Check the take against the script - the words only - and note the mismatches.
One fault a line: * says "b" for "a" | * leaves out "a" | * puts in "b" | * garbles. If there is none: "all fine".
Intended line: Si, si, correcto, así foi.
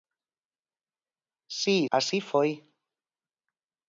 * leaves out "si correcto"